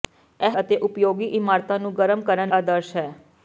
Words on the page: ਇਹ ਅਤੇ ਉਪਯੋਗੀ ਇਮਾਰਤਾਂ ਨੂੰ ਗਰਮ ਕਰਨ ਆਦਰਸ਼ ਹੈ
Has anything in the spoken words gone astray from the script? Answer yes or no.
no